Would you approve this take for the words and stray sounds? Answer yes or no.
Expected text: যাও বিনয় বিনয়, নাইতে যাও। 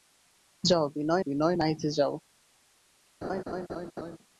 no